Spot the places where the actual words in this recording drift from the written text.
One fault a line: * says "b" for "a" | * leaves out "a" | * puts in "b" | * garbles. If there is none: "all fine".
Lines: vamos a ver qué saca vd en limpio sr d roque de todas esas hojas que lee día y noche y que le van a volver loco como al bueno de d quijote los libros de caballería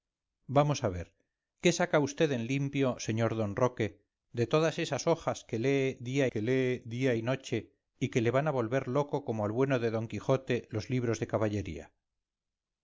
* puts in "que lee día"